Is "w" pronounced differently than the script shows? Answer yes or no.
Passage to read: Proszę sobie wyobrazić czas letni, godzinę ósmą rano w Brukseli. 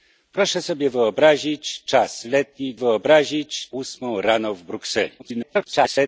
no